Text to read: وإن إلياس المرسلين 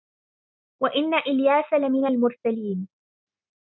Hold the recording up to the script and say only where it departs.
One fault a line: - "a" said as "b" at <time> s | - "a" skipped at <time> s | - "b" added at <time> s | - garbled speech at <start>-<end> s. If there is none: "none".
- "لمن" added at 1.7 s